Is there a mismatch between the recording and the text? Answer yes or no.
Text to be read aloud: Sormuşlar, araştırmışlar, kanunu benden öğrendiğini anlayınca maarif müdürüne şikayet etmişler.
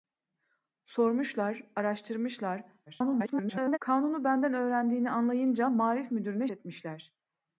yes